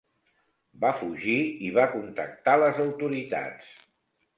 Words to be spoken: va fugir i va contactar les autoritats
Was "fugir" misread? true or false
false